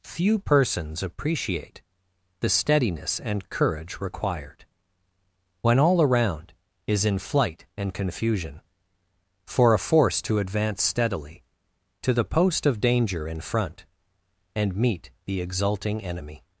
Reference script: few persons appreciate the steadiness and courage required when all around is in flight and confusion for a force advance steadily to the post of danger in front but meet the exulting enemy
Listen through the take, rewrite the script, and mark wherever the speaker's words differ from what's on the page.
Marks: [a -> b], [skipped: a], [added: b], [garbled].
few persons appreciate the steadiness and courage required when all around is in flight and confusion for a force [added: to] advance steadily to the post of danger in front [but -> and] meet the exulting enemy